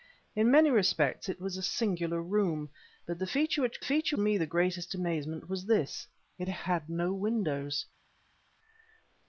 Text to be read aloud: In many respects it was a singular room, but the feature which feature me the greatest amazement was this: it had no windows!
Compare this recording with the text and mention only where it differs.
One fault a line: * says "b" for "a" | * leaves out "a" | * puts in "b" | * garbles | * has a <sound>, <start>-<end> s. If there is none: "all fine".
all fine